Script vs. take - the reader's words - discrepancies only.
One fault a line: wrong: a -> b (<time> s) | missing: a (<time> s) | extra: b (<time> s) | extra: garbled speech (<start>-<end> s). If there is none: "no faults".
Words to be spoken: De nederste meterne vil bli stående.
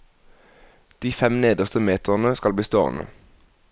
extra: fem (1.1 s)
wrong: vil -> skal (2.3 s)